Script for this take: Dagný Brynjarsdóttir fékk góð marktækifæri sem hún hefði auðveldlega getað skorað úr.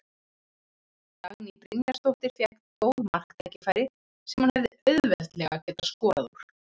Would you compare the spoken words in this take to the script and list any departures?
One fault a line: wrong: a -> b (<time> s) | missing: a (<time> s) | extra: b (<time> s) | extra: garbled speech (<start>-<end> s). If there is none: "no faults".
no faults